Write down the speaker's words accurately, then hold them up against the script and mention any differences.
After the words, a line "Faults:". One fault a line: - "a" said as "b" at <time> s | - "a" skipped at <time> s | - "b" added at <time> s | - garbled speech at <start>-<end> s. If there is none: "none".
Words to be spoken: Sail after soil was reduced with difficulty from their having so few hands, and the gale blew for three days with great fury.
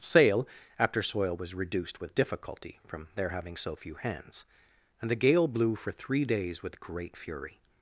Sail after soil was reduced with difficulty from their having so few hands, and the gale blew for three days with great fury.
Faults:
none